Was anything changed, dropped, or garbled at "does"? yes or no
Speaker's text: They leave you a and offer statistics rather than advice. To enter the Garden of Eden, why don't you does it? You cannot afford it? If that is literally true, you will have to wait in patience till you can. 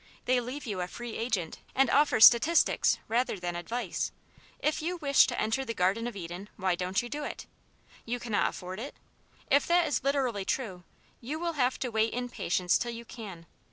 yes